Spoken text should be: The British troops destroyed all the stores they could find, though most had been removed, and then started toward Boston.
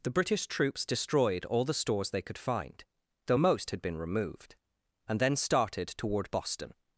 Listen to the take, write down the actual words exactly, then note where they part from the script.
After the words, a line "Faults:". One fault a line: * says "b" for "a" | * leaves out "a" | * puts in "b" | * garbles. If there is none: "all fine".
The British troops destroyed all the stores they could find, though most had been removed, and then started toward Boston.
Faults:
all fine